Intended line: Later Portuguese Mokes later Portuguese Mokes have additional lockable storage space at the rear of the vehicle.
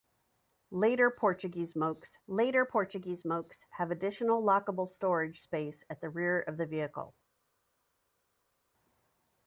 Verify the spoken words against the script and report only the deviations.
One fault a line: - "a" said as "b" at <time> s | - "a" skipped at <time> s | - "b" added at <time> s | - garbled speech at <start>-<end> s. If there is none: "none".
none